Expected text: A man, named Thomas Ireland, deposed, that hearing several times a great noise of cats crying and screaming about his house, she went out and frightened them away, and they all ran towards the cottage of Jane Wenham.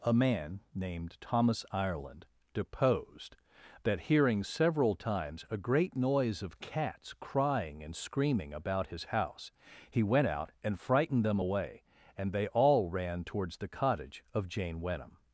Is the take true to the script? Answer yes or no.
no